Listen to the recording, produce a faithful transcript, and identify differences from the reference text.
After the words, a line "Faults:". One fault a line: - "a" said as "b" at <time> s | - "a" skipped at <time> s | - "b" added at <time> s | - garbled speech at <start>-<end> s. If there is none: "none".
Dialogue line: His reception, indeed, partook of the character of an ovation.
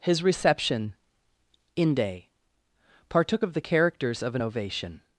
His reception, inde, partook of the characters of an ovation.
Faults:
- "indeed" said as "inde" at 1.8 s
- "character" said as "characters" at 3.6 s